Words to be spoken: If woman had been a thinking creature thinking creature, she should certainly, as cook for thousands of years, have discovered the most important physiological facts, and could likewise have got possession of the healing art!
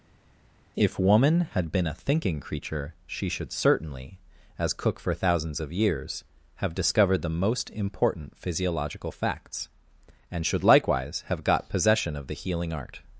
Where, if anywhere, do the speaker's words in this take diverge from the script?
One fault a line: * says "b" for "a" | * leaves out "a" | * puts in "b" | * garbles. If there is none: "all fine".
* leaves out "thinking creature"
* says "should" for "could"